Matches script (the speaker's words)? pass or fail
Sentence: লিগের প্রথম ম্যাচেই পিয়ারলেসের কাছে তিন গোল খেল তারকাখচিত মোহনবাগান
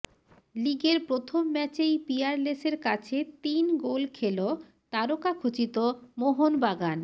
pass